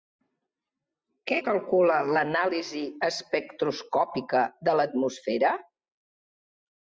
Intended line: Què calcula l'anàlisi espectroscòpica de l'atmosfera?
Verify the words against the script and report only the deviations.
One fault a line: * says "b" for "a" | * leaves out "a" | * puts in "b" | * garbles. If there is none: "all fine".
all fine